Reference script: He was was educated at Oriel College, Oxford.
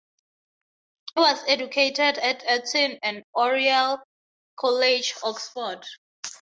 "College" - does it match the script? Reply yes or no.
yes